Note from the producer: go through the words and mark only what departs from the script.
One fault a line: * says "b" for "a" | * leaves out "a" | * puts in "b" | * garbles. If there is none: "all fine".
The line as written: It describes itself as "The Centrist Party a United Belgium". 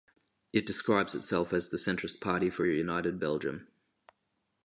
* puts in "for"